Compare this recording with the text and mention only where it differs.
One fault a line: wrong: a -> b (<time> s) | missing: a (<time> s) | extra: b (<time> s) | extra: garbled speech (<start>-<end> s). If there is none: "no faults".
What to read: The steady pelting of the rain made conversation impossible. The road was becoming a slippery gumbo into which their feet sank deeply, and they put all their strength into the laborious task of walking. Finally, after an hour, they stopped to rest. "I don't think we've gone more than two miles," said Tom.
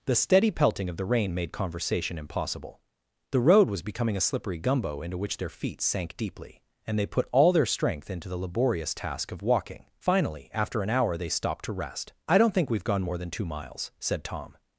no faults